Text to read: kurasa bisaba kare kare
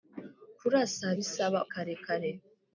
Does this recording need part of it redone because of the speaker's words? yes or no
no